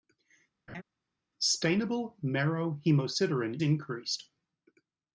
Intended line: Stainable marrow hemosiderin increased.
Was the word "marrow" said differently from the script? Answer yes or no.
no